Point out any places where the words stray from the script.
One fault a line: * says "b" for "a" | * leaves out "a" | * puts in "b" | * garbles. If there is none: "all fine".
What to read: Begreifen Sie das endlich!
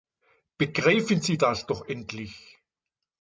* puts in "doch"